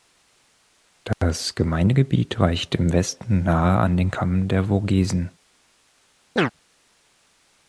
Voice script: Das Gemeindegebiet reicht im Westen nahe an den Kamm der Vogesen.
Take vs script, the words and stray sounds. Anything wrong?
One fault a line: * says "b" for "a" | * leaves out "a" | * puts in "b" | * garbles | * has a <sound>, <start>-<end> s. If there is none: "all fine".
* has a chirp, 6.4-6.5 s